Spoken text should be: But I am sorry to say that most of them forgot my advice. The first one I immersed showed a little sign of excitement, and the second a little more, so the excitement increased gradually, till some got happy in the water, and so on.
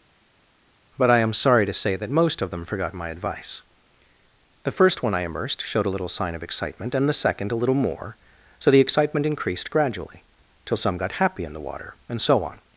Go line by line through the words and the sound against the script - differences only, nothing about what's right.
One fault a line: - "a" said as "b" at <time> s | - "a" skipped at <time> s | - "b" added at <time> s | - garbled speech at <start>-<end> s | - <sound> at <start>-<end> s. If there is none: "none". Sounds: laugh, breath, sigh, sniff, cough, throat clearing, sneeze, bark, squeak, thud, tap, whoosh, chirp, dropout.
none